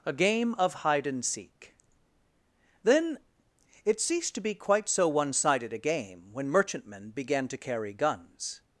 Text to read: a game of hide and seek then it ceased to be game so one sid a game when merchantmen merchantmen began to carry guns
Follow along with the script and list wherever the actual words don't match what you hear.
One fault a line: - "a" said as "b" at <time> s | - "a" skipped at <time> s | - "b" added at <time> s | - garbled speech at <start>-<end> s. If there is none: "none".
- "game" said as "quite" at 4.5 s
- "sid" said as "sided" at 5.3 s
- "merchantmen" skipped at 7.1 s